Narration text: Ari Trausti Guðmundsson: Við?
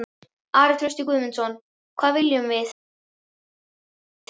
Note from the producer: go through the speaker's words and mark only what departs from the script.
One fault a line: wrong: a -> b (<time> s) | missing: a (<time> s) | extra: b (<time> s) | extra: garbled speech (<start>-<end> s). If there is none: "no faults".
extra: Hvað viljum (2.0 s)